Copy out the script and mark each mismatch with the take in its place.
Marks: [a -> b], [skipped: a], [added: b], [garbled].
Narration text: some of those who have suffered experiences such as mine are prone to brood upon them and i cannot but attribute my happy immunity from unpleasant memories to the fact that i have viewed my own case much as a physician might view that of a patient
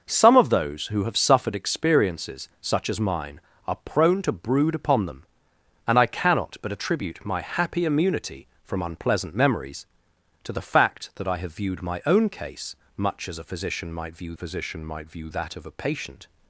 some of those who have suffered experiences such as mine are prone to brood upon them and i cannot but attribute my happy immunity from unpleasant memories to the fact that i have viewed my own case much as a physician might view [added: physician might view] that of a patient